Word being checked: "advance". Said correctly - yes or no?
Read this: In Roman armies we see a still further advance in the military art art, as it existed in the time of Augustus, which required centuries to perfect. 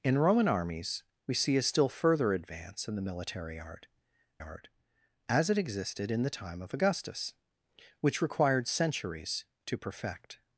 yes